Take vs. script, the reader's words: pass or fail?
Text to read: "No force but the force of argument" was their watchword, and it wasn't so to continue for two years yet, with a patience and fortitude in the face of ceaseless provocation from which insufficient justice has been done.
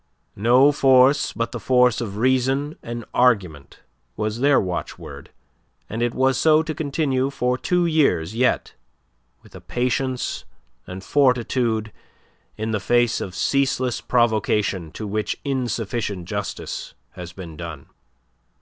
fail